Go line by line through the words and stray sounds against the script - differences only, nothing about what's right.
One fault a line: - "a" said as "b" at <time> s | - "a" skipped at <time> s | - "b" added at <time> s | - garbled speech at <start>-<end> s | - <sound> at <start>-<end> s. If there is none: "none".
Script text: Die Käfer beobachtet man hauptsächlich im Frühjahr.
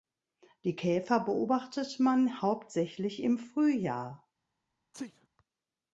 - sneeze at 4.9-5.3 s